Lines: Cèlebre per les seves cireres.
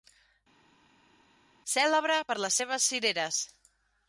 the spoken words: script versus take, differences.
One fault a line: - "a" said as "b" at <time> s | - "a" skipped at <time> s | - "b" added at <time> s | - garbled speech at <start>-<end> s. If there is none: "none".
none